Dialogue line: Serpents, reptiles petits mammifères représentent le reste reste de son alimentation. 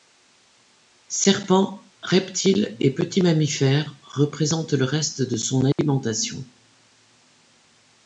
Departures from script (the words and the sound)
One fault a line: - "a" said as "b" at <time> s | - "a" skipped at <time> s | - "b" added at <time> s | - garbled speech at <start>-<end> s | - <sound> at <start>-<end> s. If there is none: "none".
- "et" added at 2.8 s
- "reste" skipped at 5.2 s
- dropout at 5.7-5.8 s